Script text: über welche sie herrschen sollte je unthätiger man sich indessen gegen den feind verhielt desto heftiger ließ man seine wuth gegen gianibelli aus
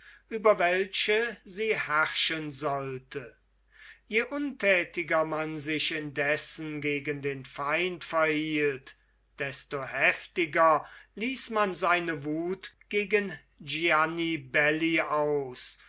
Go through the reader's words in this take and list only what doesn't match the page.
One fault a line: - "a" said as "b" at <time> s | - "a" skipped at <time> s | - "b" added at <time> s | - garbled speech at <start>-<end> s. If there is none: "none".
none